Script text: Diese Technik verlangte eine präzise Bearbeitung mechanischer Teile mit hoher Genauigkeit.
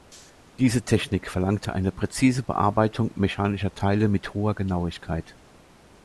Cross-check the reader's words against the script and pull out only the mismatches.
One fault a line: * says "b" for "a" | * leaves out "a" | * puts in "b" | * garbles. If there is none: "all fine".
all fine